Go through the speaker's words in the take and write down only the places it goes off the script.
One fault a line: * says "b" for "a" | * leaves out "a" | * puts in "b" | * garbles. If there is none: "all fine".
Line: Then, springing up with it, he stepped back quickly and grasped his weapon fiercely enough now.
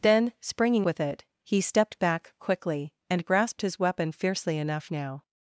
* leaves out "up"